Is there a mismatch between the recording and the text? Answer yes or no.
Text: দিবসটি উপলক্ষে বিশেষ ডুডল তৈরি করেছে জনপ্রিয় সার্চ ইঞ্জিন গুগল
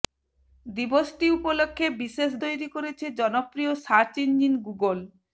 yes